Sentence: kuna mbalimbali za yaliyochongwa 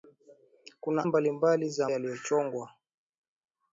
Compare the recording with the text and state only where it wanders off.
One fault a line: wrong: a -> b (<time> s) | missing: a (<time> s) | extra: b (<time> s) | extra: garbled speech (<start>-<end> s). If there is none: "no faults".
no faults